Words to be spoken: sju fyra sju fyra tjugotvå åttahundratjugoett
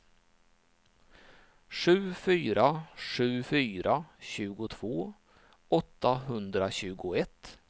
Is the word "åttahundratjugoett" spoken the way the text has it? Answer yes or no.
yes